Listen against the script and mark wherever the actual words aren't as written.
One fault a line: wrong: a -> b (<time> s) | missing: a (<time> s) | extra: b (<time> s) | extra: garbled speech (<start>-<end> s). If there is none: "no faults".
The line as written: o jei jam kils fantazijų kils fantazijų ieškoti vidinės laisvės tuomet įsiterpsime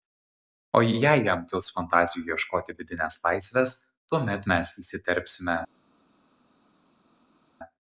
missing: kils fantazijų (2.3 s)
extra: mes (4.5 s)